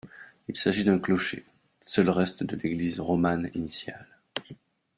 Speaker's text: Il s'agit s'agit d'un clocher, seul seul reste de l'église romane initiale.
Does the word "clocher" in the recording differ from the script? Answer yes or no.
no